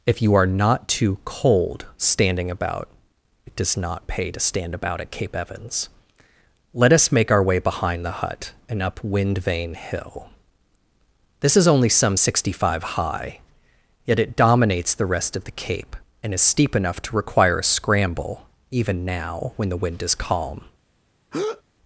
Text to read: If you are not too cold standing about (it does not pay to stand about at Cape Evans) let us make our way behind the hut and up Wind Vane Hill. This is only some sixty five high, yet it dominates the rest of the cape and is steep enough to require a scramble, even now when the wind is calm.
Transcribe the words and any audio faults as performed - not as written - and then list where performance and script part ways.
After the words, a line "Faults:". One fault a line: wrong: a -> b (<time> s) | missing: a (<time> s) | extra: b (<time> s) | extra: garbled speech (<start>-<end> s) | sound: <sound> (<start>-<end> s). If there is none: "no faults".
If you are not too cold standing about (it does not pay to stand about at Cape Evans) let us make our way behind the hut and up Wind Vane Hill. This is only some sixty five high, yet it dominates the rest of the cape and is steep enough to require a scramble, even now when the wind is calm.
Faults:
sound: breath (21.3-21.6 s)